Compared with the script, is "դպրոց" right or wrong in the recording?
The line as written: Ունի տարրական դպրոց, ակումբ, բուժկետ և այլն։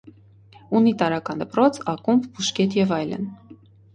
right